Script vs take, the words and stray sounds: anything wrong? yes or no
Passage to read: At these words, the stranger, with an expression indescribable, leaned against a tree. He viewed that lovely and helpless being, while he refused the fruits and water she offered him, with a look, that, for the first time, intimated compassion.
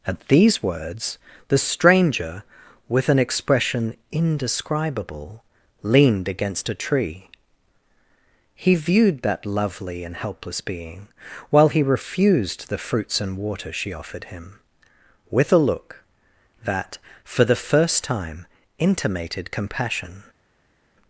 no